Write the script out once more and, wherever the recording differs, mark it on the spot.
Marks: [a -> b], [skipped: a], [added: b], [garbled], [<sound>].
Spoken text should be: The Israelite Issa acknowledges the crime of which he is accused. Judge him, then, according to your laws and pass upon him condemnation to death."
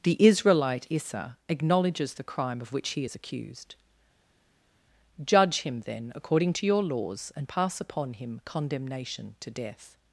The Israelite Issa acknowledges the crime of which he is accused. Judge him, then, according to your laws and pass upon him condemnation to death."